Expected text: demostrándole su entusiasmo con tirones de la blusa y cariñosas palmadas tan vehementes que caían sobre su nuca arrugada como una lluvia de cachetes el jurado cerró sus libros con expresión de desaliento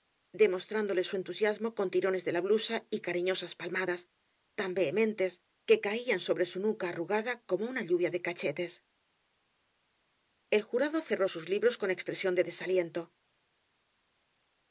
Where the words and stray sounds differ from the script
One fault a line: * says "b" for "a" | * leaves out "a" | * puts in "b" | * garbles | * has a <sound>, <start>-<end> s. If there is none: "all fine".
all fine